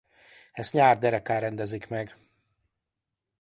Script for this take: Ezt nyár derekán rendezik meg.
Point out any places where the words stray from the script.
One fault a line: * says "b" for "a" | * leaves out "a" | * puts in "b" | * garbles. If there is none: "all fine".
all fine